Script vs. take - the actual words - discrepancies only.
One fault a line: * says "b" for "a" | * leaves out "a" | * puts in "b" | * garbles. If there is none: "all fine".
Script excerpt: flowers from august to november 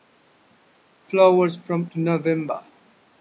* leaves out "august"